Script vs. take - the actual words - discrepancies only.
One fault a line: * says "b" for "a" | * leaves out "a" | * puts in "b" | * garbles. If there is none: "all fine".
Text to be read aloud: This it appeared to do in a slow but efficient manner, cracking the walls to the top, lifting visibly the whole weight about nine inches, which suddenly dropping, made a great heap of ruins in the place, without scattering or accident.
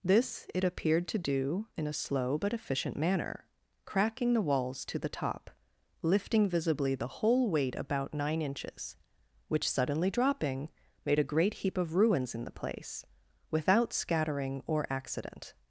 all fine